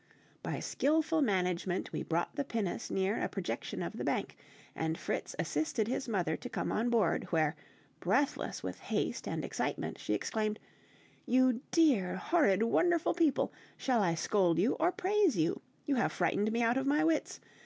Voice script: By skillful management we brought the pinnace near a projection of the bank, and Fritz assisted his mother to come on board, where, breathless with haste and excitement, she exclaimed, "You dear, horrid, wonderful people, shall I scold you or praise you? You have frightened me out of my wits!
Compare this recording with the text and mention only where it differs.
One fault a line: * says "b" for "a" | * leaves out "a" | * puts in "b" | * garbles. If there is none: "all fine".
all fine